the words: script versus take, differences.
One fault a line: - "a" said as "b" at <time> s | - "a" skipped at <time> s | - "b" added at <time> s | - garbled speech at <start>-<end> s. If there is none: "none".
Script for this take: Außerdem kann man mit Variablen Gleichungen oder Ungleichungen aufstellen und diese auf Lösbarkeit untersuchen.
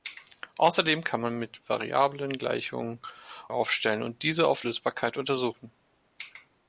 - "oder Ungleichungen" skipped at 3.0 s